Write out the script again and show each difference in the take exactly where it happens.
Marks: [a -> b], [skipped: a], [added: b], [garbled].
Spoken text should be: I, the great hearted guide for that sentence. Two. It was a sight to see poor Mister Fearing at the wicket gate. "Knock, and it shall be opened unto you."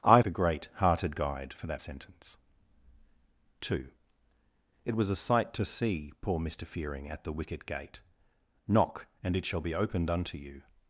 I, the great hearted guide for that sentence. Two. It was a sight to see poor Mister Fearing at the wicket gate. "Knock, and it shall be opened unto you."